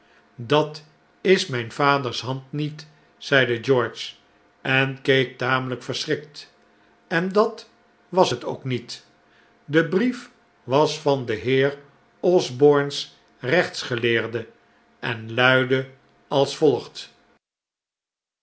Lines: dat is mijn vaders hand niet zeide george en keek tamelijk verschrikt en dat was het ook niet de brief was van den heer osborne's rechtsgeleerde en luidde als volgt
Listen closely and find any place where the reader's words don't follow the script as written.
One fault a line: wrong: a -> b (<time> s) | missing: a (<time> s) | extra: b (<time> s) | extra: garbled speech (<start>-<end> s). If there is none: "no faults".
no faults